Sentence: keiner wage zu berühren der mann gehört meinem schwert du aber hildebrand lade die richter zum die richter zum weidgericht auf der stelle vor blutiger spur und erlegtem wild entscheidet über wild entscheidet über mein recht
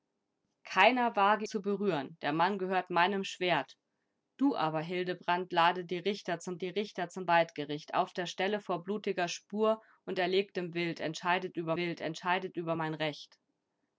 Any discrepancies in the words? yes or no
no